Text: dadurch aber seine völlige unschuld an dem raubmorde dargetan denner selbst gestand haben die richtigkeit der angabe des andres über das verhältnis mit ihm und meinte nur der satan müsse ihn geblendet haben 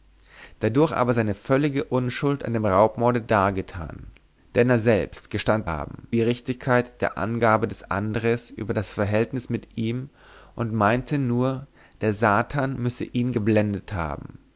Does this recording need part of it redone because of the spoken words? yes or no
no